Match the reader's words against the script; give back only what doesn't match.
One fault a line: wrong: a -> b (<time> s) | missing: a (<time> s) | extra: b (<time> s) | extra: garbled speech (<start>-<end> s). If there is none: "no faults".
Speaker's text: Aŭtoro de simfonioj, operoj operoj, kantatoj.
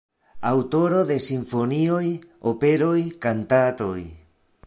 missing: operoj (2.9 s)